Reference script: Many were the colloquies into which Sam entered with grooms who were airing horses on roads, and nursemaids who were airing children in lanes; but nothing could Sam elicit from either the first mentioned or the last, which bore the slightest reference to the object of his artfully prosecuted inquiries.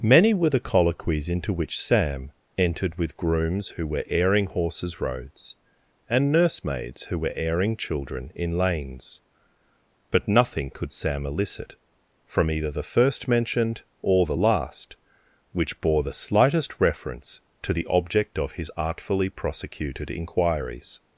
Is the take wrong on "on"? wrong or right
wrong